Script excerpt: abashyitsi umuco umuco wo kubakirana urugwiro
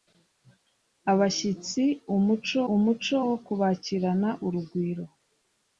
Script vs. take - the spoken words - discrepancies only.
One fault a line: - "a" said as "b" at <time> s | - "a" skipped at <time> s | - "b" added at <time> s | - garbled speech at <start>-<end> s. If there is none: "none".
none